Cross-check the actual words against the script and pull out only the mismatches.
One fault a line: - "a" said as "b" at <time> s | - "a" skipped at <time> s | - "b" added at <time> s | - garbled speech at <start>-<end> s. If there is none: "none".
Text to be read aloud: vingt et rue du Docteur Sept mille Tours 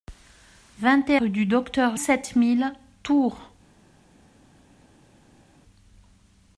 none